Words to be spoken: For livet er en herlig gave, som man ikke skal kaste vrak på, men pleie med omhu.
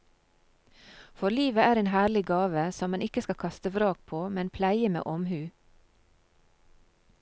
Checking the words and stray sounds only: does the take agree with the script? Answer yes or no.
yes